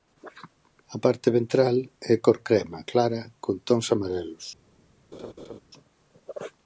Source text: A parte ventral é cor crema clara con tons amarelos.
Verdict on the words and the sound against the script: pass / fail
fail